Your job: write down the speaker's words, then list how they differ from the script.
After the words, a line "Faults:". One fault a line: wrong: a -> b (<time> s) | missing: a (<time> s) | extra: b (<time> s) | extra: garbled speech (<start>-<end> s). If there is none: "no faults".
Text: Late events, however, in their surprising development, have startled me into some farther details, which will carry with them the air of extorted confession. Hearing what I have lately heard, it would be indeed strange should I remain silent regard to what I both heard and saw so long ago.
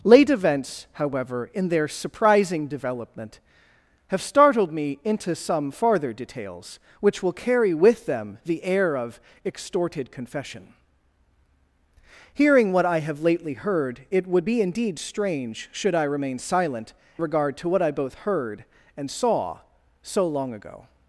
Late events, however, in their surprising development, have startled me into some farther details, which will carry with them the air of extorted confession. Hearing what I have lately heard, it would be indeed strange should I remain silent regard to what I both heard and saw so long ago.
Faults:
no faults